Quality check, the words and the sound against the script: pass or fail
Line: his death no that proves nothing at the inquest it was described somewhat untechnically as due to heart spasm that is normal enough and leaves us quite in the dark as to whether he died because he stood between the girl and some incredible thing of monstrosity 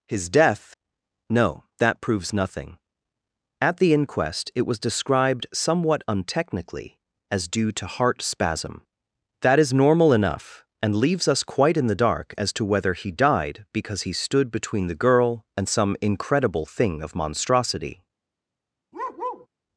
fail